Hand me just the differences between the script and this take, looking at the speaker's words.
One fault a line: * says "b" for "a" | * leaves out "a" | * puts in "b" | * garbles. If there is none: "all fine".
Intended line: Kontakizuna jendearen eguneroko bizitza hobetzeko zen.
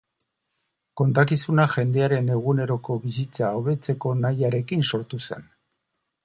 * puts in "nahiarekin sortu"